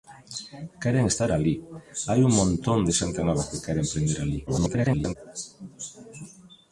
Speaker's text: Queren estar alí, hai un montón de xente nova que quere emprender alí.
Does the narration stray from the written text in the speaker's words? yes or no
yes